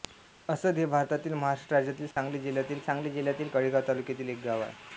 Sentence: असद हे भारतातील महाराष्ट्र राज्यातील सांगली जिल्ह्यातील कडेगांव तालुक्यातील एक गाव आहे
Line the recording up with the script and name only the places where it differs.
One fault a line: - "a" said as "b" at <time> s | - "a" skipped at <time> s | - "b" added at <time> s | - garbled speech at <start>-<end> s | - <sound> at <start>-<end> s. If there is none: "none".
- dropout at 2.1-2.2 s
- "सांगली जिल्ह्यातील" added at 2.8 s